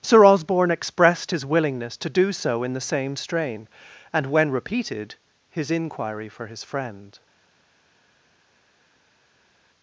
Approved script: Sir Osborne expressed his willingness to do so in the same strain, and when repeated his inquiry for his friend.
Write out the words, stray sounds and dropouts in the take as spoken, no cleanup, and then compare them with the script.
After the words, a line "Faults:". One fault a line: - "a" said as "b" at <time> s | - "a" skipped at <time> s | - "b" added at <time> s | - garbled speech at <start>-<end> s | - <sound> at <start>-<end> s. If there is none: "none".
Sir Osborne expressed his willingness to do so in the same strain, and when repeated his inquiry for his friend.
Faults:
none